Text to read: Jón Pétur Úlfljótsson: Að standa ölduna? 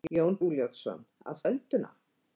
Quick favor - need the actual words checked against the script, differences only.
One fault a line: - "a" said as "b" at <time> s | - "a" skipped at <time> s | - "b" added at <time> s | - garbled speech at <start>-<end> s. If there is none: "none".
- "Pétur" skipped at 0.4 s
- "standa" skipped at 1.4 s